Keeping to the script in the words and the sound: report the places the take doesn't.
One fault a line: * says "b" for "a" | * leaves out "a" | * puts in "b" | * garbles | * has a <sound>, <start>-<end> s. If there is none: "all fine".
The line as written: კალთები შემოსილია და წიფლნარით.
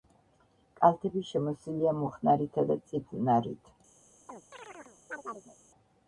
* puts in "მუხნარითა"
* has a chirp, 4.3-5.6 s